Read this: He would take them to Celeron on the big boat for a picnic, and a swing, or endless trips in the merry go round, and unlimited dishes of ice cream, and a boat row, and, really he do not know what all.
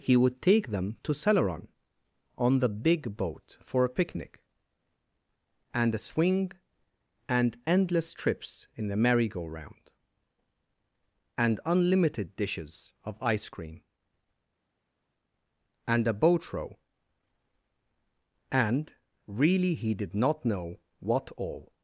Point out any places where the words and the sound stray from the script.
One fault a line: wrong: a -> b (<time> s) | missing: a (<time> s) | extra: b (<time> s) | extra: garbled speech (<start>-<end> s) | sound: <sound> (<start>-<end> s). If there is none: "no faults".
wrong: or -> and (7.3 s)
wrong: do -> did (19.9 s)